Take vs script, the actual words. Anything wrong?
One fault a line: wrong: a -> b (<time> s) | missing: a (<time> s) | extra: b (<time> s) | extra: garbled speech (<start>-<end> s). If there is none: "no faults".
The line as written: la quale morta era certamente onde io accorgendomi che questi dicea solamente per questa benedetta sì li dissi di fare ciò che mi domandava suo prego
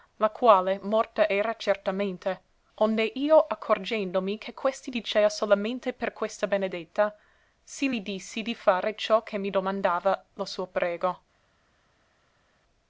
extra: lo (10.3 s)